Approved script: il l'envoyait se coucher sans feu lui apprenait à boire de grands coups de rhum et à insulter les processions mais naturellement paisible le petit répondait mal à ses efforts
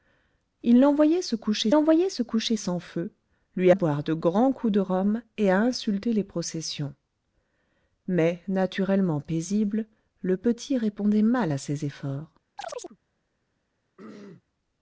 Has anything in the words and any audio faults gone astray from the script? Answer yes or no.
yes